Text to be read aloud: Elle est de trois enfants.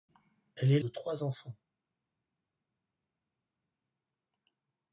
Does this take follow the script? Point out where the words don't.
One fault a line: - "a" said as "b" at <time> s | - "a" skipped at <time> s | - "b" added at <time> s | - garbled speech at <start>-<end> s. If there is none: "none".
none